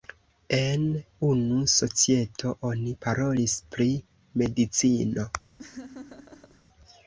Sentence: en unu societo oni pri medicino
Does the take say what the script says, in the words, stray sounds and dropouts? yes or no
no